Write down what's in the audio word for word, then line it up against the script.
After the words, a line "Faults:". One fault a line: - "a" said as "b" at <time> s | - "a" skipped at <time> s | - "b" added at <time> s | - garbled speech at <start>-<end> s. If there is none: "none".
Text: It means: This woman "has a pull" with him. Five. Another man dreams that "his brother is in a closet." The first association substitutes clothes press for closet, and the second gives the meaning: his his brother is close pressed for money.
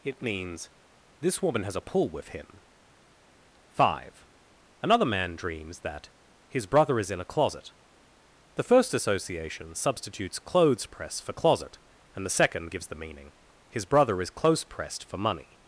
It means: This woman "has a pull" with him. Five. Another man dreams that "his brother is in a closet." The first association substitutes clothes press for closet, and the second gives the meaning: his brother is close pressed for money.
Faults:
- "his" skipped at 13.8 s